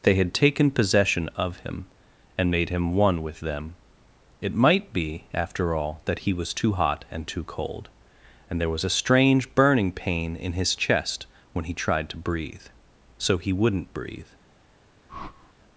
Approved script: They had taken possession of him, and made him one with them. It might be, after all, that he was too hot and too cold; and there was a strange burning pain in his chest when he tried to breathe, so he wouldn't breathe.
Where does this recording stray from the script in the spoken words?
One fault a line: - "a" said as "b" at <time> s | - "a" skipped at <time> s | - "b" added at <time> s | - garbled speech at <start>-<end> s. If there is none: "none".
none